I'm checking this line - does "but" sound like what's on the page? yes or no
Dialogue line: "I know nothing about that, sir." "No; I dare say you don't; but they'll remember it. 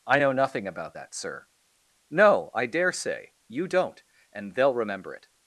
no